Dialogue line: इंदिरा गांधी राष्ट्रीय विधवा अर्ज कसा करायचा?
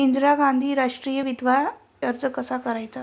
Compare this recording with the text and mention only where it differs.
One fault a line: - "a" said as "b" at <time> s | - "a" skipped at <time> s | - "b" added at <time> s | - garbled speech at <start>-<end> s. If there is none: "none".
none